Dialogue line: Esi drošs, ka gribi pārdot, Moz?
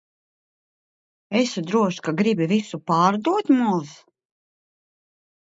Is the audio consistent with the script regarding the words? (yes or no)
no